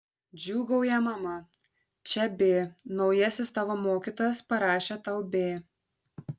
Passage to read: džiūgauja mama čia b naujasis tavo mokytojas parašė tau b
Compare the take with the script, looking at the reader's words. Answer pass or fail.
pass